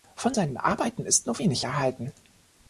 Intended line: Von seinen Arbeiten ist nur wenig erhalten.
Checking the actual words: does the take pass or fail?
pass